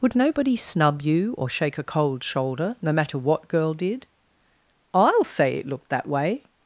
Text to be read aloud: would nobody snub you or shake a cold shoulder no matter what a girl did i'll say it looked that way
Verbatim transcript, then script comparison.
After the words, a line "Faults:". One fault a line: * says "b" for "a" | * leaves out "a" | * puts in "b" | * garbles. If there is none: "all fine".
would nobody snub you or shake a cold shoulder no matter what girl did i'll say it looked that way
Faults:
* leaves out "a"